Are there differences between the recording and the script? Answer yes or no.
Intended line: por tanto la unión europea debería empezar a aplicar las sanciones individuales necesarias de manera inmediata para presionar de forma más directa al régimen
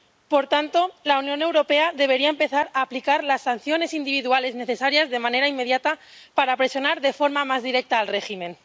no